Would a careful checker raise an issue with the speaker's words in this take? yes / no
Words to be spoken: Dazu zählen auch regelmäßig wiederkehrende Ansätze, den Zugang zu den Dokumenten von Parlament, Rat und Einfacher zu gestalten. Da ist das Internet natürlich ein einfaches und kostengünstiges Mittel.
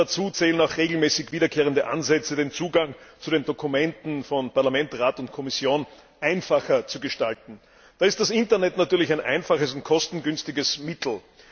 yes